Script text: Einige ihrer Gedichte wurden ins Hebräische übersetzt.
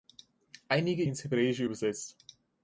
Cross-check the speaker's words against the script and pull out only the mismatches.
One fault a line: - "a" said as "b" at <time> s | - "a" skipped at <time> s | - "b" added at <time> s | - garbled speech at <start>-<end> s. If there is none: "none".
- "ihrer Gedichte wurden" skipped at 1.0 s